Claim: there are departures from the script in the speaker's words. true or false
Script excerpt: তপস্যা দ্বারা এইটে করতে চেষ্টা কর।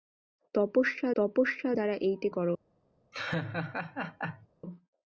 true